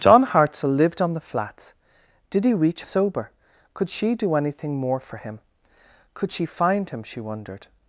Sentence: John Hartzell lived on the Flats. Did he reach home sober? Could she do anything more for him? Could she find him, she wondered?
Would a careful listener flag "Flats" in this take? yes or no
no